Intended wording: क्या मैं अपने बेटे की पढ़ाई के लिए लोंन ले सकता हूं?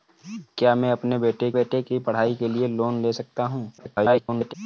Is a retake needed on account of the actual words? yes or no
yes